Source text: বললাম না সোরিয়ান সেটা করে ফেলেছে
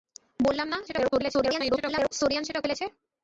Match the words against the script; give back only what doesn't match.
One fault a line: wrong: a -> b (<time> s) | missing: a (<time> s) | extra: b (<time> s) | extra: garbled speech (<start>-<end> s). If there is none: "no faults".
extra: garbled speech (0.9-2.1 s)
missing: করে (2.6 s)